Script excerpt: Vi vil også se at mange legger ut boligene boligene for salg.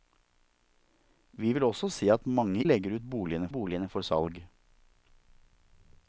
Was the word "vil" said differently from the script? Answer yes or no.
no